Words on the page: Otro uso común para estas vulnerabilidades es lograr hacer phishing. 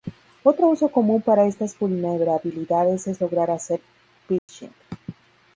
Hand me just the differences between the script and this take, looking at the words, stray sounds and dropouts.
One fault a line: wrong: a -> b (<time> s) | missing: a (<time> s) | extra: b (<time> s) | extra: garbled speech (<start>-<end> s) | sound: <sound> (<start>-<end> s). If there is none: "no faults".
sound: dropout (4.4-4.5 s)